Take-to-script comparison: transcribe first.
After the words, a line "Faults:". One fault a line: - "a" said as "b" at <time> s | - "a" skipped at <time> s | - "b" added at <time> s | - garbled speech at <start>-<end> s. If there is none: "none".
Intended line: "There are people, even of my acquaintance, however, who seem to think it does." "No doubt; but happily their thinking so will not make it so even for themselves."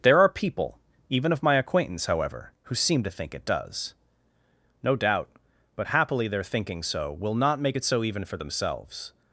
"There are people, even of my acquaintance, however, who seem to think it does." "No doubt; but happily their thinking so will not make it so even for themselves."
Faults:
none